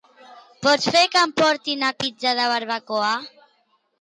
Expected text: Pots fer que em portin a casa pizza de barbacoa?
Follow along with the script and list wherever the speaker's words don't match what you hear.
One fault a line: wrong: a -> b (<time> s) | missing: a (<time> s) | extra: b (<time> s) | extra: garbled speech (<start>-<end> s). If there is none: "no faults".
missing: casa (1.9 s)